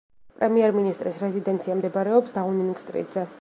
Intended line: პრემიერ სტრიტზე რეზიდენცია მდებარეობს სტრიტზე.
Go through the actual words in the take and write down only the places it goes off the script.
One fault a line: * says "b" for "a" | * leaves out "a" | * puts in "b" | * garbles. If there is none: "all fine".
* says "მინისტრის" for "სტრიტზე"
* puts in "დაუნინგ"